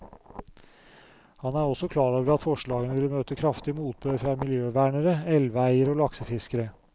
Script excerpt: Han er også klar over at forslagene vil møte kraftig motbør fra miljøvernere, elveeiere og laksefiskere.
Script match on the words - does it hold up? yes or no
yes